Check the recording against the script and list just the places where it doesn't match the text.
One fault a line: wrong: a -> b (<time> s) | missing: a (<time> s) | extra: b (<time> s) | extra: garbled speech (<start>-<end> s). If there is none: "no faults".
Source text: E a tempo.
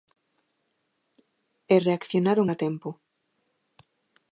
extra: reaccionaron (1.8 s)